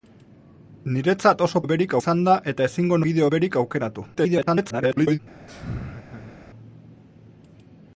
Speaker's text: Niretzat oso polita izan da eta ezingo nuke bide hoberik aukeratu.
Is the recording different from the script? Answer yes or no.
yes